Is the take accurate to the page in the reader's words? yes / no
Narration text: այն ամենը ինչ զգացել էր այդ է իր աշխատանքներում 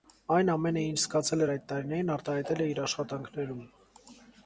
no